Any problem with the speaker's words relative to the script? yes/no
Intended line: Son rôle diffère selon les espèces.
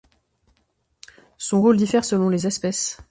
no